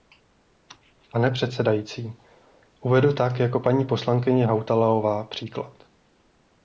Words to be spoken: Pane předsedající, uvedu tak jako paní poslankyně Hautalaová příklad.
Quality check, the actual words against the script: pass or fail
pass